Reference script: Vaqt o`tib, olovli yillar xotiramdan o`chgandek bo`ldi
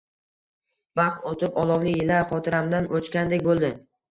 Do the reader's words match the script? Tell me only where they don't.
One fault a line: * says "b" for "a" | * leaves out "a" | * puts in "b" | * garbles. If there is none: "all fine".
all fine